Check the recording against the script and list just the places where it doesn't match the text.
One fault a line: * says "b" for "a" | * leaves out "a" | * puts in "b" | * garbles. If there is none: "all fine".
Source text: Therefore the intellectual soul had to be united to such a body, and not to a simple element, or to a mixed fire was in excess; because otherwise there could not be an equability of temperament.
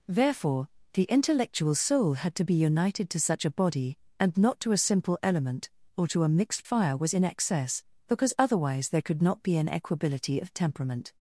all fine